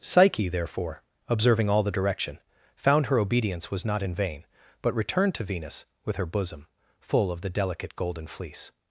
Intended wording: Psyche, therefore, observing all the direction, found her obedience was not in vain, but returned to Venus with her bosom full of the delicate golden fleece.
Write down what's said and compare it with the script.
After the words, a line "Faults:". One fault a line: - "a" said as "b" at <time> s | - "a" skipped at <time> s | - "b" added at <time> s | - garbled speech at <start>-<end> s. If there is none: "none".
Psyche, therefore, observing all the direction, found her obedience was not in vain, but returned to Venus with her bosom full of the delicate golden fleece.
Faults:
none